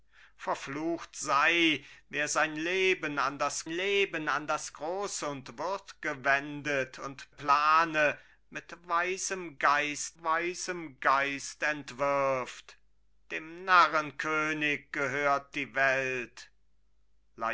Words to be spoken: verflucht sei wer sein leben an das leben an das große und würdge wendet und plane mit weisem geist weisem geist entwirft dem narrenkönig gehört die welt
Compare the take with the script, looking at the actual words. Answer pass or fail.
pass